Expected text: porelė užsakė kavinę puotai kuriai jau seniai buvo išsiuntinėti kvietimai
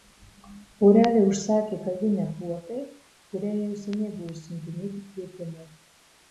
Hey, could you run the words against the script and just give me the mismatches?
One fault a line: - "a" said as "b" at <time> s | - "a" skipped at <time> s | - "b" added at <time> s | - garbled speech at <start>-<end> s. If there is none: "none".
none